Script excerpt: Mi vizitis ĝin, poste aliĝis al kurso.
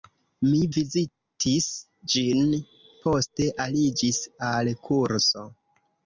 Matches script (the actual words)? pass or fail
pass